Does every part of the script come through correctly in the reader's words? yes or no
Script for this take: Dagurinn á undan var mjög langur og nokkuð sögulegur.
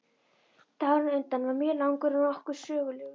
yes